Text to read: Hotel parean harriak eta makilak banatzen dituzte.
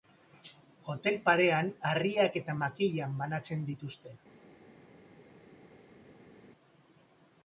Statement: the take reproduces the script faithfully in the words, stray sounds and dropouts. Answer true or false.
true